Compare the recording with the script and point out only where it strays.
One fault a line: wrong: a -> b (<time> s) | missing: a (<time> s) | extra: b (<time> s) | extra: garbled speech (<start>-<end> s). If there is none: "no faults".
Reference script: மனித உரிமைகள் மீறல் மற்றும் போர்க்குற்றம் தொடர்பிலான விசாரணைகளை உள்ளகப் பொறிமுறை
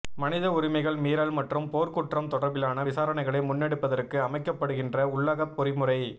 extra: முன்னெடுப்பதற்கு அமைக்கப்படுகின்ற (3.5 s)